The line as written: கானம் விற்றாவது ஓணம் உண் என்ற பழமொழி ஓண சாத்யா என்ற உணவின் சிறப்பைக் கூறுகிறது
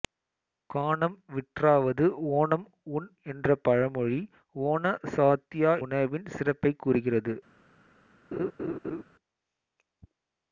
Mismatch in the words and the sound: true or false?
true